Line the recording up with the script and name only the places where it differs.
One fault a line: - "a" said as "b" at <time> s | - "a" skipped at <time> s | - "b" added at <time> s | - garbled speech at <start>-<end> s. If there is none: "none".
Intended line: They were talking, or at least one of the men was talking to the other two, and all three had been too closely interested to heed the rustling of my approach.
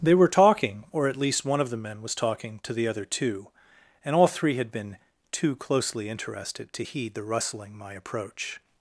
- "of" skipped at 7.7 s